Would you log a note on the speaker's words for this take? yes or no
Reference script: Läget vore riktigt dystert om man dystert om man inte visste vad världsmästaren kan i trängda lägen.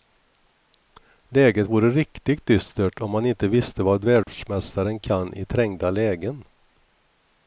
yes